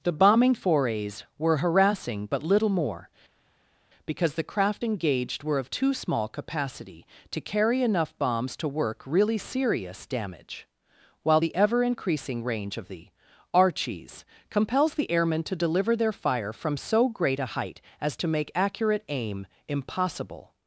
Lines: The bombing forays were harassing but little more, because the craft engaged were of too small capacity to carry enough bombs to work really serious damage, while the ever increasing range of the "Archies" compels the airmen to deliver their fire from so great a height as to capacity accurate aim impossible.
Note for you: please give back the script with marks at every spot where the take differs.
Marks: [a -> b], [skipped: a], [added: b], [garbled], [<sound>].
The bombing forays were harassing but little more, because the craft engaged were of too small capacity to carry enough bombs to work really serious damage, while the ever increasing range of the "Archies" compels the airmen to deliver their fire from so great a height as to [capacity -> make] accurate aim impossible.